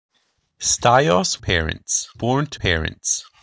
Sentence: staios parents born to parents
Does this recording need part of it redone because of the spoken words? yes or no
no